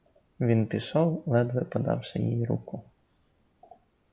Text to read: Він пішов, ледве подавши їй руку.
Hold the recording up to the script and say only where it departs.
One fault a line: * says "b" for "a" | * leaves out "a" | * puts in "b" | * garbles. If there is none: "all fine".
all fine